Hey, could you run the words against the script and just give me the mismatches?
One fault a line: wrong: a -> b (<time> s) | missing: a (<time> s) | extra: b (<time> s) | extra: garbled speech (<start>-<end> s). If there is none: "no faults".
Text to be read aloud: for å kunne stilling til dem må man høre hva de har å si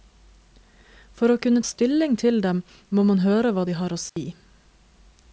no faults